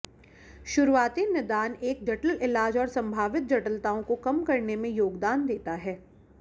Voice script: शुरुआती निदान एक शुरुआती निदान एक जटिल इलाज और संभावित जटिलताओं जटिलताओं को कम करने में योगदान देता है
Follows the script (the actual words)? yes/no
no